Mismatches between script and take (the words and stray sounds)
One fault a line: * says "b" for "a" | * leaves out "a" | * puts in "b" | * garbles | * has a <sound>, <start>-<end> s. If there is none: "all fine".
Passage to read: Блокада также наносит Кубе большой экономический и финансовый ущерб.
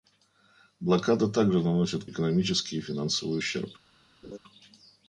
* leaves out "Кубе большой"
* has a laugh, 4.2-4.4 s